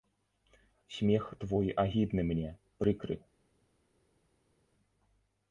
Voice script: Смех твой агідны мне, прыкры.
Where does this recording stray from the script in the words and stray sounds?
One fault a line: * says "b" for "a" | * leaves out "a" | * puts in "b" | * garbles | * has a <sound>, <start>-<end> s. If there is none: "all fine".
all fine